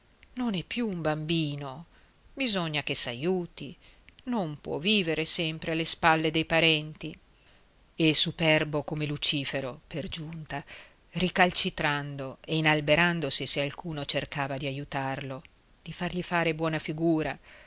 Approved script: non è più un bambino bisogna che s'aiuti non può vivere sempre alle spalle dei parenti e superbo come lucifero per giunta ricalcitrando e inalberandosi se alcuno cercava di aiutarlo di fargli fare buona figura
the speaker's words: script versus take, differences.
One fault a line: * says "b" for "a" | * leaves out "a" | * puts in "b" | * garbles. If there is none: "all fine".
all fine